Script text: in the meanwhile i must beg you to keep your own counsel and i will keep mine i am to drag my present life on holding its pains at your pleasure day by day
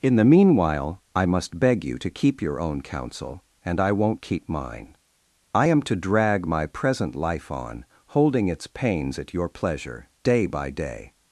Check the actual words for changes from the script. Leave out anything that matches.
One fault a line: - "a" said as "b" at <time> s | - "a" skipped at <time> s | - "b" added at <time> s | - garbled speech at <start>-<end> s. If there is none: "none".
- "will" said as "won't" at 3.9 s